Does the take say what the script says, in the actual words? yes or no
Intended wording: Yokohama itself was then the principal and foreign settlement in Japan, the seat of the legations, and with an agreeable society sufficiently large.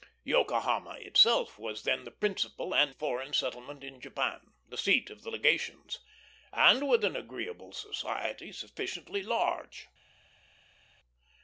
yes